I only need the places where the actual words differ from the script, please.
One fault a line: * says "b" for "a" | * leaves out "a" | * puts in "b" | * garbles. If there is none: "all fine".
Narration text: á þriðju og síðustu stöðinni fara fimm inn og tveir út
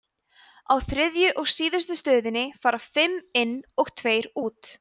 all fine